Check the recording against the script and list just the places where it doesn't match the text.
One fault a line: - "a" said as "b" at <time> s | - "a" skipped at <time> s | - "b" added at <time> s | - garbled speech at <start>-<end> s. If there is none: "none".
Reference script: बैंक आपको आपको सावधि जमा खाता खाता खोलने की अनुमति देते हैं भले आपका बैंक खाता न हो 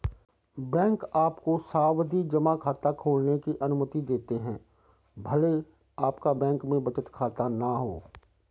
- "आपको" skipped at 1.6 s
- "खाता" skipped at 2.9 s
- "में बचत" added at 6.6 s